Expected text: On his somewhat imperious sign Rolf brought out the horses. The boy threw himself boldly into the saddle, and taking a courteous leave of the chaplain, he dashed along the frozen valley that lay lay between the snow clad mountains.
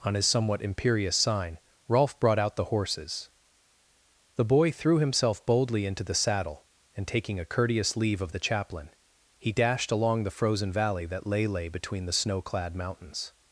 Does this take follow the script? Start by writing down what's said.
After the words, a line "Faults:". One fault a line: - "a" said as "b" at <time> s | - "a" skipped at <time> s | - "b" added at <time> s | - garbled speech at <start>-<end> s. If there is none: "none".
On his somewhat imperious sign Rolf brought out the horses. The boy threw himself boldly into the saddle, and taking a courteous leave of the chaplain, he dashed along the frozen valley that lay lay between the snow clad mountains.
Faults:
none